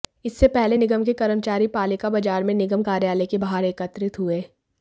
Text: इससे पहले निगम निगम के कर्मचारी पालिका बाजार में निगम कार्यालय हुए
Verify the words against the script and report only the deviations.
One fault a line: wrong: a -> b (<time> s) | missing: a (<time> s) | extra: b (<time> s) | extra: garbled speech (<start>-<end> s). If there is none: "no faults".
missing: निगम (1.0 s)
extra: के बाहर एकत्रित (3.3 s)